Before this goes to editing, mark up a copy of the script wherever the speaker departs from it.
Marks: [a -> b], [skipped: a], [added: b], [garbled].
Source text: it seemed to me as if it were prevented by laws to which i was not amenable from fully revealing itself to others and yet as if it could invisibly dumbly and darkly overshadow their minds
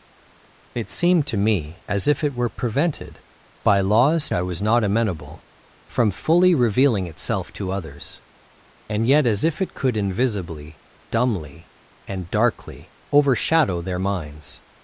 it seemed to me as if it were prevented by laws [skipped: to which] i was not amenable from fully revealing itself to others and yet as if it could invisibly dumbly and darkly overshadow their minds